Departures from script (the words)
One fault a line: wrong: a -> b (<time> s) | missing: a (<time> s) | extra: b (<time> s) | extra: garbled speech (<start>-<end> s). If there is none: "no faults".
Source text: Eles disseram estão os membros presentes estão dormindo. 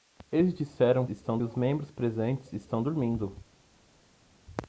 no faults